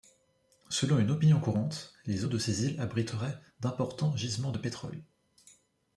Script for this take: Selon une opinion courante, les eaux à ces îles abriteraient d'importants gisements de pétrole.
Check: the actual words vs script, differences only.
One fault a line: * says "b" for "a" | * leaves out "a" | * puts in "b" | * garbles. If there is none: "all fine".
* says "de" for "à"